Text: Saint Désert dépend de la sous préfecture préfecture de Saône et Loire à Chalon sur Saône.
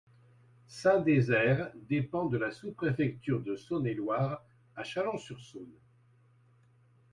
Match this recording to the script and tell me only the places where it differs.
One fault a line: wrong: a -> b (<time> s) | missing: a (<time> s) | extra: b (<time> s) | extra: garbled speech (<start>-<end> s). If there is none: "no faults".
missing: préfecture (3.4 s)